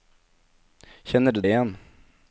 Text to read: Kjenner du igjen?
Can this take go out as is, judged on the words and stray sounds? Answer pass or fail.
pass